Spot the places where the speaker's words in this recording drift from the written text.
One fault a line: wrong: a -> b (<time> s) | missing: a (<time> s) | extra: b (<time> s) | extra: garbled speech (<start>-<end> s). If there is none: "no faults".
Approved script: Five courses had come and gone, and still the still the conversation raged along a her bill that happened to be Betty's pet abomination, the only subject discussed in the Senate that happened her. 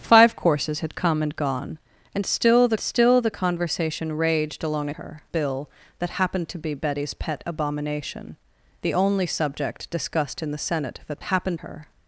no faults